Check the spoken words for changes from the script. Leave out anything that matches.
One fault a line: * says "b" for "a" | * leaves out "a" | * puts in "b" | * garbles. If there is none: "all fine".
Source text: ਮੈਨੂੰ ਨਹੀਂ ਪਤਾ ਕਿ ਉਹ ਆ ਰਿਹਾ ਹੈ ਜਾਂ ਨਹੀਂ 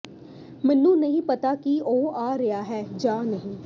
all fine